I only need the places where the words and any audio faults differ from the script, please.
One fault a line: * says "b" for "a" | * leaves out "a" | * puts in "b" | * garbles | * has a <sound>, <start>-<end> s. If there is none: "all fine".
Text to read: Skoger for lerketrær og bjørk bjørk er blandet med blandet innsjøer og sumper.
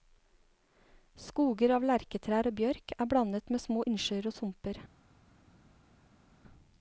* says "av" for "for"
* leaves out "bjørk"
* says "små" for "blandet"